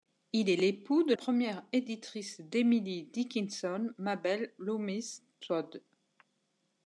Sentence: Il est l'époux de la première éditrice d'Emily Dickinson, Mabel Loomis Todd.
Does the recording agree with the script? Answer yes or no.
no